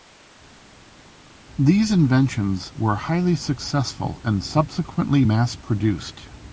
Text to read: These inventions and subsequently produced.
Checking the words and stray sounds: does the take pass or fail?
fail